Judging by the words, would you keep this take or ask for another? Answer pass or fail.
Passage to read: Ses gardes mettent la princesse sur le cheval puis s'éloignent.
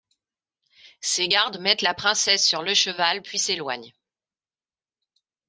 pass